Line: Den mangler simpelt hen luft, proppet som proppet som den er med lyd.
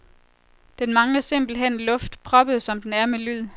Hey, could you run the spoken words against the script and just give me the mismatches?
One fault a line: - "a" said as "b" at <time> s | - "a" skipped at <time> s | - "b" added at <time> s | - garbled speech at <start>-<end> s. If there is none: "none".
- "proppet som" skipped at 2.8 s